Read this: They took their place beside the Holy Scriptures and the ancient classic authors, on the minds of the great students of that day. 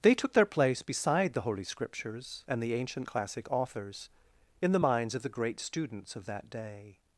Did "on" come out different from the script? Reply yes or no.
yes